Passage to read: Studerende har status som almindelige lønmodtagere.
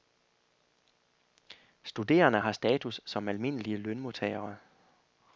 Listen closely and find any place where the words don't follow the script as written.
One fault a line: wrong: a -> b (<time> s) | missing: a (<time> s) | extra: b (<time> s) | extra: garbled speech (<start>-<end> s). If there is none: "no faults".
no faults